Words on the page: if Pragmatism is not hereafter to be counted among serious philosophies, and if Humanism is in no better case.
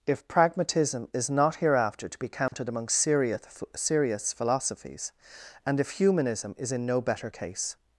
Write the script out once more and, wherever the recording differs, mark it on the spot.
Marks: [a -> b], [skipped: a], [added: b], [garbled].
if Pragmatism is not hereafter to be counted among serious [added: serious] philosophies, and if Humanism is in no better case.